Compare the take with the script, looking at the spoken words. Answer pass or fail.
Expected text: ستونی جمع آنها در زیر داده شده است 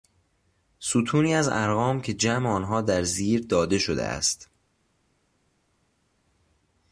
fail